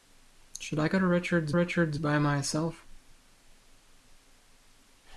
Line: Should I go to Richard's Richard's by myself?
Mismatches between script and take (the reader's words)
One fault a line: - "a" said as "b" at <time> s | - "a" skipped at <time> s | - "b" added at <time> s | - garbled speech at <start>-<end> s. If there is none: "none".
none